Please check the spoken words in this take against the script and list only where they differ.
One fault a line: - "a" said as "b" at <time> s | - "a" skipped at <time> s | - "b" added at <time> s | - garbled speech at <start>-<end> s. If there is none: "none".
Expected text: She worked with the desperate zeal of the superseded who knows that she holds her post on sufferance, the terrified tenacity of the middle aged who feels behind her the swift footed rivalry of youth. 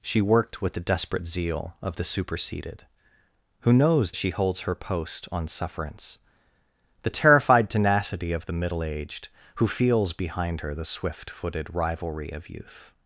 - "that" skipped at 4.1 s